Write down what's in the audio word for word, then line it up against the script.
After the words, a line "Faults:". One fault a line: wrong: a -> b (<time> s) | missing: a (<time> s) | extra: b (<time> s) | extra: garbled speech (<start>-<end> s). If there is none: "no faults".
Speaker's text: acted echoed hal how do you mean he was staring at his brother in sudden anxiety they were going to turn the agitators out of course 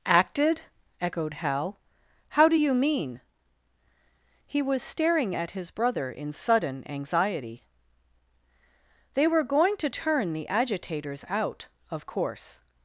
acted echoed hal how do you mean he was staring at his brother in sudden anxiety they were going to turn the agitators out of course
Faults:
no faults